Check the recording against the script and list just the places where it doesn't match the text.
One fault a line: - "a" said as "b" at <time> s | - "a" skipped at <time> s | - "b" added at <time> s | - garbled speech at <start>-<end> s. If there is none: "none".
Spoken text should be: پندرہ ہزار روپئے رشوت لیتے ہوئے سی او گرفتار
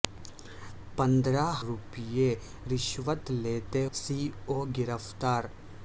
- "ہزار" skipped at 1.4 s
- "ہوئے" skipped at 3.9 s